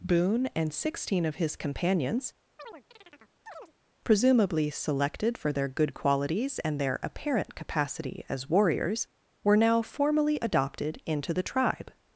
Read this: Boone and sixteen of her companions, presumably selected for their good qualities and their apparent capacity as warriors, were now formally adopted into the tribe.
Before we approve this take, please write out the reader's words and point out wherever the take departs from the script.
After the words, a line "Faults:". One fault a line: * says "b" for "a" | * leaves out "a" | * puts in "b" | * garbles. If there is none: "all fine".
Boone and sixteen of his companions, presumably selected for their good qualities and their apparent capacity as warriors, were now formally adopted into the tribe.
Faults:
* says "his" for "her"